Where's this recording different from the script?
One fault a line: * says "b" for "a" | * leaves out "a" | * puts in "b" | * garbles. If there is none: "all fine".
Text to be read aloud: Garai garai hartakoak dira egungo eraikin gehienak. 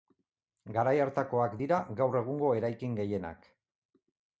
* leaves out "garai"
* puts in "gaur"